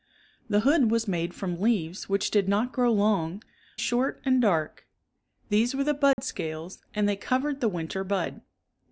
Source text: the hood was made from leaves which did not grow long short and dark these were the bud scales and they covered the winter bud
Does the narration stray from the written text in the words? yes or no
no